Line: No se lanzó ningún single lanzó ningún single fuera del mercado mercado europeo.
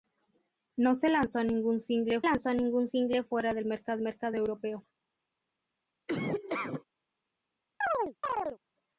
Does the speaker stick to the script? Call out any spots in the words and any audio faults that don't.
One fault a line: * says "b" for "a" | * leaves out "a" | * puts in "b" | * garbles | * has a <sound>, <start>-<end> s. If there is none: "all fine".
* has a laugh, 6.1-6.8 s
* has a chirp, 7.8-8.6 s